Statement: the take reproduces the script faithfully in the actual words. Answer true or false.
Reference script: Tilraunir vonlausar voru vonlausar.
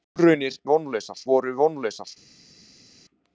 true